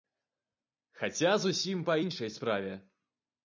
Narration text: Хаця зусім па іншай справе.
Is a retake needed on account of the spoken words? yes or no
no